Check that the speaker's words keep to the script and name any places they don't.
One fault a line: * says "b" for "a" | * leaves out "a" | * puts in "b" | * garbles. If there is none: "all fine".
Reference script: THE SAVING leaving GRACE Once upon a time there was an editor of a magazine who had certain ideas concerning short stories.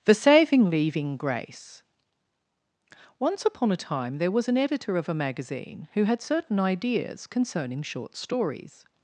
all fine